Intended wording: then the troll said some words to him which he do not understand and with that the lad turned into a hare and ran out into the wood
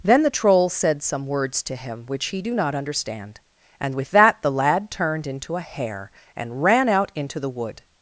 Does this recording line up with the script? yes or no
yes